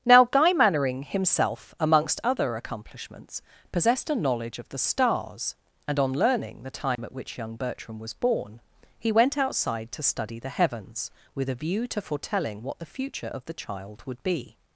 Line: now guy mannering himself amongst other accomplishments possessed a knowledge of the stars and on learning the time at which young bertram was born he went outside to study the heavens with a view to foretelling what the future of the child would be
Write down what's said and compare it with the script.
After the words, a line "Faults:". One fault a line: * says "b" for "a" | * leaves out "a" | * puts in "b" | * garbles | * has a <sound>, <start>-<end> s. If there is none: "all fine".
now guy mannering himself amongst other accomplishments possessed a knowledge of the stars and on learning the time at which young bertram was born he went outside to study the heavens with a view to foretelling what the future of the child would be
Faults:
* has a dropout, 6.9-7.0 s